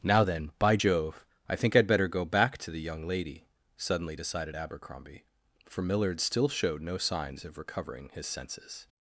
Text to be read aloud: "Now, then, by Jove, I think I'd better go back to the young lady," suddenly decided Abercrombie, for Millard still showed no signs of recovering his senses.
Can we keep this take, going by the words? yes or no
yes